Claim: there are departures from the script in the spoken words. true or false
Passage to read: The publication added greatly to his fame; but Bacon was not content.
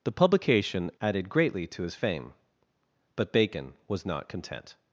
false